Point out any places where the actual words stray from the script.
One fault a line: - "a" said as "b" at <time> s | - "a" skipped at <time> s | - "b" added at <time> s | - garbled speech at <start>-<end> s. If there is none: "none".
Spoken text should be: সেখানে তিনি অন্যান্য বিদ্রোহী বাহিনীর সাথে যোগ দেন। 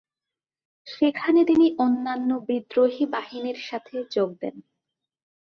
none